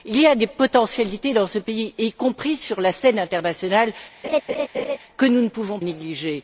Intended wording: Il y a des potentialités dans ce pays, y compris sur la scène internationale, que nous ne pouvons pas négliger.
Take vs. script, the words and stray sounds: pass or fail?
fail